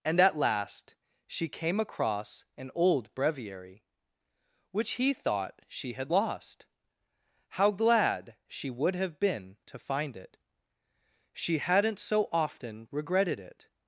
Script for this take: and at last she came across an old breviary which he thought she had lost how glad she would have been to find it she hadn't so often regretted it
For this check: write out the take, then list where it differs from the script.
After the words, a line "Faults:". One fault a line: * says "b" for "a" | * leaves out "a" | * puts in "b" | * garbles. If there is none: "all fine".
and at last she came across an old breviary which he thought she had lost how glad she would have been to find it she hadn't so often regretted it
Faults:
all fine